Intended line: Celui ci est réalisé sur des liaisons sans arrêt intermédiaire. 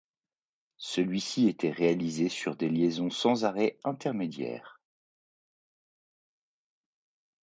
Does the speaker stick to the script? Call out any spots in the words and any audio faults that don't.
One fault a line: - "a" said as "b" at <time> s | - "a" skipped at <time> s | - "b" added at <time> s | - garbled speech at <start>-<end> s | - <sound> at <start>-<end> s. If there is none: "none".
- "est" said as "était" at 1.5 s